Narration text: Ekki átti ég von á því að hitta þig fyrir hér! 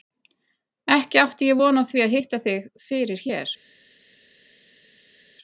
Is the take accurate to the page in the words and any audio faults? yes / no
yes